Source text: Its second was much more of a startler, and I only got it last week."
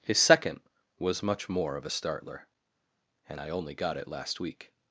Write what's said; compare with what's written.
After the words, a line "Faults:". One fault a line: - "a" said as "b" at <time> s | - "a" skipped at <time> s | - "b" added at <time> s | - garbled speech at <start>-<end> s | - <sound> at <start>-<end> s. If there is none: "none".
His second was much more of a startler, and I only got it last week."
Faults:
- "Its" said as "His" at 0.0 s